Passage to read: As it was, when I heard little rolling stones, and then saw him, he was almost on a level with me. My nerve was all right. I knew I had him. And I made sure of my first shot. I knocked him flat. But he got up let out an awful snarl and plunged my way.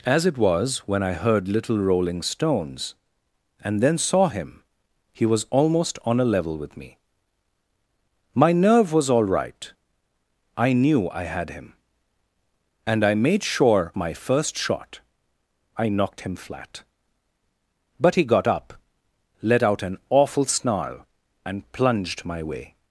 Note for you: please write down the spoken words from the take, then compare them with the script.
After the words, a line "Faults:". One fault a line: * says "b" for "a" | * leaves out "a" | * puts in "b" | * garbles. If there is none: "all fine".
As it was, when I heard little rolling stones, and then saw him, he was almost on a level with me. My nerve was all right. I knew I had him. And I made sure my first shot. I knocked him flat. But he got up let out an awful snarl and plunged my way.
Faults:
* leaves out "of"